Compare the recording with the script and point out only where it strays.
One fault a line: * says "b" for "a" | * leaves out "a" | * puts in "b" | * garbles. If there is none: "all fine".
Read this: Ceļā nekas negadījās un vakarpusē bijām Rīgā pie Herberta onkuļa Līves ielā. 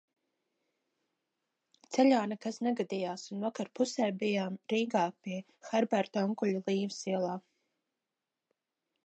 all fine